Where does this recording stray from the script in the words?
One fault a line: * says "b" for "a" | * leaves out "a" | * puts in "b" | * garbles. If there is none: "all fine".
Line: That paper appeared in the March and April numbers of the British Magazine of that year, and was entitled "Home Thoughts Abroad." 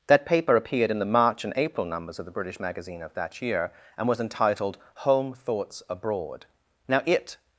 * puts in "Now it"